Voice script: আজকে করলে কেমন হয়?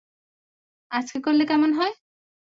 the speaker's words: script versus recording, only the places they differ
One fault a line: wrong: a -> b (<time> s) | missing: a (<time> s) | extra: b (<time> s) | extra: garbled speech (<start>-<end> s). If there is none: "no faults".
no faults